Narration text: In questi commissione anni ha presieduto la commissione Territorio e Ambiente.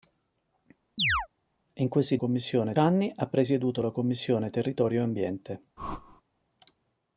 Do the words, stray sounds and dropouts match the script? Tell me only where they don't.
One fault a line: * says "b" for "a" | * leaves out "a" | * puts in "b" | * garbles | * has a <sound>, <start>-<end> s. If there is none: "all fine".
* has a chirp, 1.0-1.3 s
* has a whoosh, 5.8-6.2 s